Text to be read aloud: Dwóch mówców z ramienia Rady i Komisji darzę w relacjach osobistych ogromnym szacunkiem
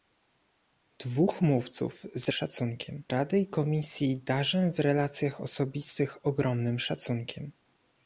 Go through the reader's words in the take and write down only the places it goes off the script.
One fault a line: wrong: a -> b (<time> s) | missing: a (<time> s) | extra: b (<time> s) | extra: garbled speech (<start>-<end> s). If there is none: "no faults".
wrong: ramienia -> szacunkiem (2.3 s)